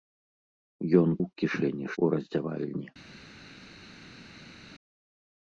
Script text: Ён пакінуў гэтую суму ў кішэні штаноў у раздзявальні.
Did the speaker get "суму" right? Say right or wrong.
wrong